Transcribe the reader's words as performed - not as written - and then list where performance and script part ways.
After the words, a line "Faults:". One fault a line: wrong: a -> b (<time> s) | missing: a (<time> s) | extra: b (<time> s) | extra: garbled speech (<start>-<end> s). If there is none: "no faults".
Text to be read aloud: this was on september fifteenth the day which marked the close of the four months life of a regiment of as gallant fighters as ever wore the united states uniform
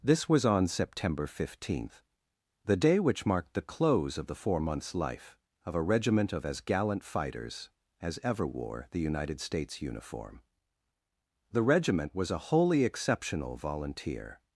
this was on september fifteenth the day which marked the close of the four months life of a regiment of as gallant fighters as ever wore the united states uniform the regiment was a wholly exceptional volunteer
Faults:
extra: the regiment was a wholly exceptional volunteer (11.5 s)